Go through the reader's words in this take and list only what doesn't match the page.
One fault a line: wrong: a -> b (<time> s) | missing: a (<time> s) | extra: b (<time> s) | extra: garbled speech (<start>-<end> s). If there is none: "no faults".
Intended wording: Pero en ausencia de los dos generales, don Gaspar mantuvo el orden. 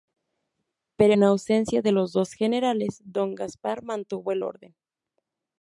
no faults